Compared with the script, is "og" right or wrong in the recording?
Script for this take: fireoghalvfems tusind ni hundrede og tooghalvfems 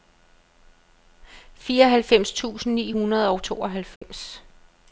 right